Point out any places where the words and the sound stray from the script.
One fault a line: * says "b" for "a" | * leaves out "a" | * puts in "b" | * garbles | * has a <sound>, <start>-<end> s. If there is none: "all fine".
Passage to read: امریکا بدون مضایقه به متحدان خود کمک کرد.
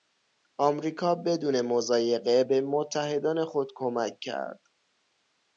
all fine